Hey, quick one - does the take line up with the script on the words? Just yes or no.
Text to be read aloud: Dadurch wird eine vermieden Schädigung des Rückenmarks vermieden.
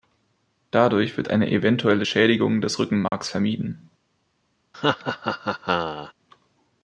no